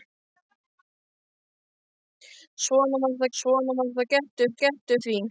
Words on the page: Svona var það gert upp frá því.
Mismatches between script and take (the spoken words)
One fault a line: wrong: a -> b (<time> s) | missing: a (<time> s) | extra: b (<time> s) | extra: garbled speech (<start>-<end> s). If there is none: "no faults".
extra: svona var það (3.4 s)
wrong: frá -> gert (4.6 s)